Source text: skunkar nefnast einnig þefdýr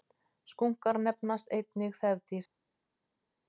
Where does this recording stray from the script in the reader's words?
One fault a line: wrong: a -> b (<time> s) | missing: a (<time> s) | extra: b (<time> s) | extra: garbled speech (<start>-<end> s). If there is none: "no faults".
no faults